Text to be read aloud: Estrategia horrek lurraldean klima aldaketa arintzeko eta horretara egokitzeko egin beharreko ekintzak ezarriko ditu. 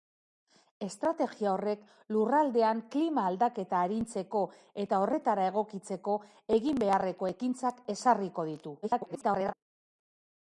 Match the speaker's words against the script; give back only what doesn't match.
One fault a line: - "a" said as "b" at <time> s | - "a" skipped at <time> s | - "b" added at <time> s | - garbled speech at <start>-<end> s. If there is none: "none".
- garbled speech at 8.8-9.5 s